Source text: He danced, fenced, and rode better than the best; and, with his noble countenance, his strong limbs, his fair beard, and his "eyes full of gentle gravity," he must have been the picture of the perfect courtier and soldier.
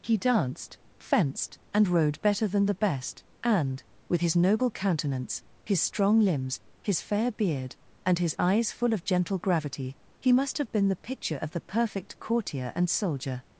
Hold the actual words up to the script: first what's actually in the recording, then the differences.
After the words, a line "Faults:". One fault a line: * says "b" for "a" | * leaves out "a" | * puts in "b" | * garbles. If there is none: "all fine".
He danced, fenced, and rode better than the best; and, with his noble countenance, his strong limbs, his fair beard, and his "eyes full of gentle gravity," he must have been the picture of the perfect courtier and soldier.
Faults:
all fine